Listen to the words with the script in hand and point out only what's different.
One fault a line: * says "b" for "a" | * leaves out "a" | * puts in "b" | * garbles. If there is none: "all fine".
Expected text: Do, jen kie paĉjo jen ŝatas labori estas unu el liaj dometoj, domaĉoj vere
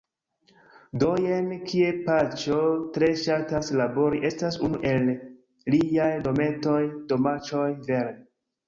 * says "tre" for "jen"